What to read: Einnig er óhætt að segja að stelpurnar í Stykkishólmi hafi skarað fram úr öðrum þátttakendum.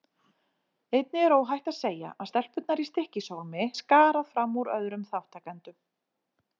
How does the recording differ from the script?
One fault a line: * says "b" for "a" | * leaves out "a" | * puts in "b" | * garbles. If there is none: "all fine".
* leaves out "hafi"